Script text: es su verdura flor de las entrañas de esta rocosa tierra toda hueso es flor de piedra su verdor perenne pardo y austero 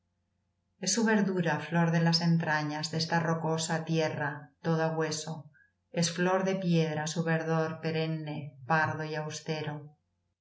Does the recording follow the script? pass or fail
pass